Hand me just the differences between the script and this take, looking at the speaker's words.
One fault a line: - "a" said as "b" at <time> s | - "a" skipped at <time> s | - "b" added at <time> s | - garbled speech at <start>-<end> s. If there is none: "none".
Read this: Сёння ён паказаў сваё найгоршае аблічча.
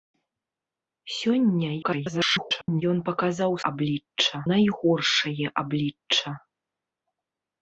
- garbled speech at 1.8-2.8 s
- "сваё" said as "аблічча" at 3.7 s